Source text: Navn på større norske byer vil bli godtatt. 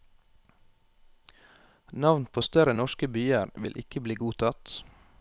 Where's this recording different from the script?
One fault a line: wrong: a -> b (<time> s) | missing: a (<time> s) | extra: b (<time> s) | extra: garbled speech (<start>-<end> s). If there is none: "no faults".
extra: ikke (3.8 s)